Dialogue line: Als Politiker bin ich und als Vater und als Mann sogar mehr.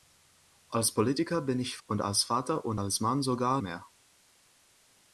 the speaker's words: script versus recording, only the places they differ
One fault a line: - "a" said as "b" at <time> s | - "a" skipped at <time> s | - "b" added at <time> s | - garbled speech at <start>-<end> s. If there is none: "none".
none